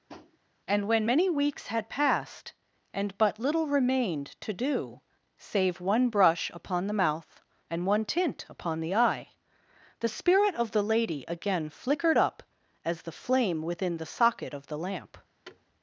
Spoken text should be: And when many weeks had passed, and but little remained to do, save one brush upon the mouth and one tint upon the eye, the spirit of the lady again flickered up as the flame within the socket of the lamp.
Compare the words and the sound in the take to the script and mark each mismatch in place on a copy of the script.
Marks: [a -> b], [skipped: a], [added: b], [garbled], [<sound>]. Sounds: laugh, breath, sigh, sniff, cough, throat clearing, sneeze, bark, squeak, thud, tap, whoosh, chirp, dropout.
[tap] And when many weeks had passed, and but little remained to do, save one brush upon the mouth and one tint upon the eye, the spirit of the lady again flickered up as the flame within the socket of the lamp. [thud]